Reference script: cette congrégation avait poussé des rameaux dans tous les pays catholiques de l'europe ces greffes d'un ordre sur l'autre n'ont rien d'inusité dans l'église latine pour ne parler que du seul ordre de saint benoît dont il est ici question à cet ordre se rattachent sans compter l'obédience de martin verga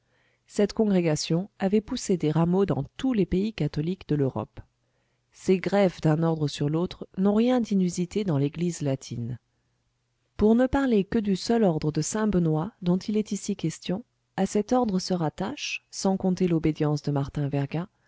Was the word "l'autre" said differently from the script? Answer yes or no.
no